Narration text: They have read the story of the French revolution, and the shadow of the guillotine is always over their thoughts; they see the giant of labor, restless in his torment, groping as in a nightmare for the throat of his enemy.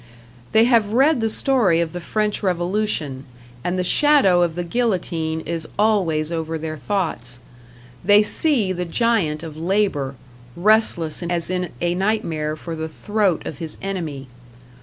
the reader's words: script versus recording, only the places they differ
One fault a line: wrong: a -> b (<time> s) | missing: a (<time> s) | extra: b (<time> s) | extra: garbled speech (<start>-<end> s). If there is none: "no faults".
missing: his torment groping (11.3 s)